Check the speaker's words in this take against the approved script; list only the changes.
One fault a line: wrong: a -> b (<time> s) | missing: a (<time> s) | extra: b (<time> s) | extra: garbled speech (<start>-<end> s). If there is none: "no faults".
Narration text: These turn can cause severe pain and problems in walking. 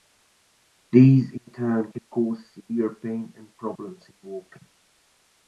extra: in (1.3 s)